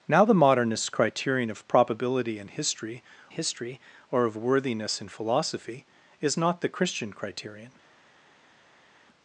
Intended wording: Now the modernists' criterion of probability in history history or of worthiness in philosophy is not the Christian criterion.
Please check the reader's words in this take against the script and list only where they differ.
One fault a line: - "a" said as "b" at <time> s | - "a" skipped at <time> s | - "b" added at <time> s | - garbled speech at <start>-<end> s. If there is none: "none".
none